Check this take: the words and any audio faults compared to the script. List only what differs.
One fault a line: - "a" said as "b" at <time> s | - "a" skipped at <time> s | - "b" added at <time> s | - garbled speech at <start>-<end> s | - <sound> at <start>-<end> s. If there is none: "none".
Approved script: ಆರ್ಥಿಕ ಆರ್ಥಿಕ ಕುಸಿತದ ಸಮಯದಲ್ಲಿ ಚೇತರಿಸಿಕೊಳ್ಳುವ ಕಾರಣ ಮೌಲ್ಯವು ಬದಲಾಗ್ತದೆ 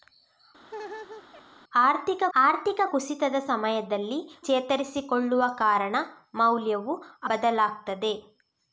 - laugh at 0.7-1.4 s